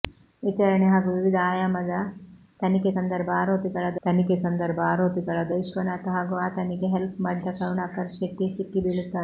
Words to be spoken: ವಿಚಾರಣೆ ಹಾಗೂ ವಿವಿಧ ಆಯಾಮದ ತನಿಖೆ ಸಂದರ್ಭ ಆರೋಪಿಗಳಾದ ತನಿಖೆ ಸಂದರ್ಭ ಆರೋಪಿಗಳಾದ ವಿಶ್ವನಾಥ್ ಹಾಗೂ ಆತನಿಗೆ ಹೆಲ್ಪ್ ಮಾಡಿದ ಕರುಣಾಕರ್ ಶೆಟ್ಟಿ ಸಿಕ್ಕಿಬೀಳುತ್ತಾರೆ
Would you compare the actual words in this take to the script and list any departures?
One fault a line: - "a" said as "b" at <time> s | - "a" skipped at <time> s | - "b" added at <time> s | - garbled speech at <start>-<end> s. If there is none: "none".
none